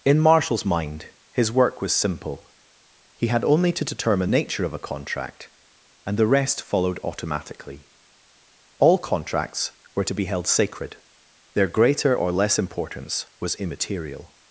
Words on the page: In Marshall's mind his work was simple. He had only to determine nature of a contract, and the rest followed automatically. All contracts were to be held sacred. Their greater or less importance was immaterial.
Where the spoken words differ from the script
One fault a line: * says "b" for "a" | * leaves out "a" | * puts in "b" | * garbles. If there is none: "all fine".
all fine